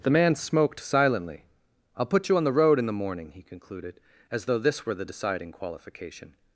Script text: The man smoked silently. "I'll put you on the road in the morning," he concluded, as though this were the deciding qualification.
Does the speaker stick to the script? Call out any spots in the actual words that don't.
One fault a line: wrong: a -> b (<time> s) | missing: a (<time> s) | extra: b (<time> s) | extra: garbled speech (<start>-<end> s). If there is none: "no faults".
no faults